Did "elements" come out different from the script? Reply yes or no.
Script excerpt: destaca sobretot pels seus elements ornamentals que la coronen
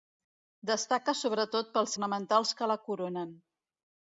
yes